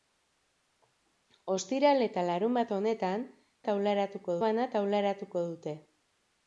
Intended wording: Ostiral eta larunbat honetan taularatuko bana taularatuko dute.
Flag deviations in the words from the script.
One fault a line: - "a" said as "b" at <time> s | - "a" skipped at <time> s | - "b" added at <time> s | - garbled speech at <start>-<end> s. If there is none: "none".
none